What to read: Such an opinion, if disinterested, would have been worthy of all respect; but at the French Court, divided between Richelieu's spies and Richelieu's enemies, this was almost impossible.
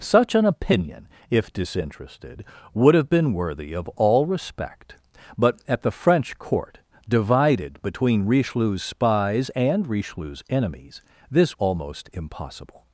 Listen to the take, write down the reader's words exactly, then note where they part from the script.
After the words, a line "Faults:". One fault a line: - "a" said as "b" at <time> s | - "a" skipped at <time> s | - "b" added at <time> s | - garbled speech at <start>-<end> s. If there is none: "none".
Such an opinion, if disinterested, would have been worthy of all respect; but at the French Court, divided between Richelieu's spies and Richelieu's enemies, this almost impossible.
Faults:
- "was" skipped at 11.6 s